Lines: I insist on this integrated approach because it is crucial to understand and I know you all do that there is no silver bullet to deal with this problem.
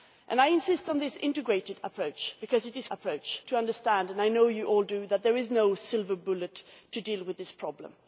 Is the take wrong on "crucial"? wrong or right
wrong